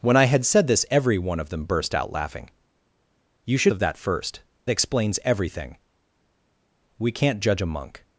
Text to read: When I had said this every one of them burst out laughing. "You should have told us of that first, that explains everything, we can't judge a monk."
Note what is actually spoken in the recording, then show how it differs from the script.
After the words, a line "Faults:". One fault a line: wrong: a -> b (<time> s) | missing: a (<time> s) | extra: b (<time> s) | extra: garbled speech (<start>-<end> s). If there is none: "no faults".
When I had said this every one of them burst out laughing. "You should of that first, explains everything, we can't judge a monk."
Faults:
missing: have told us (3.7 s)
missing: that (4.4 s)